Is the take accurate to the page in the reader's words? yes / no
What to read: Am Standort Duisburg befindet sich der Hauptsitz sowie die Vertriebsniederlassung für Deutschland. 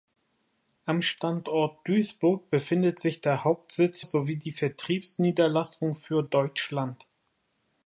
yes